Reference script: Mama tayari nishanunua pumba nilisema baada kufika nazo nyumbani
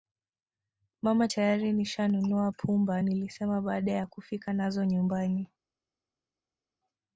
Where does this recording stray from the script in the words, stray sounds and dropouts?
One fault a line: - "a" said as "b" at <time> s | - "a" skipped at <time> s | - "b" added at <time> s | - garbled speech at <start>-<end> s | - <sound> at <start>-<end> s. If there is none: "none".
- "ya" added at 3.9 s